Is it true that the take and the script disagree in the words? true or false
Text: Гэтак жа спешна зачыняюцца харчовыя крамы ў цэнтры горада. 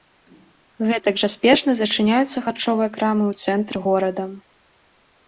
false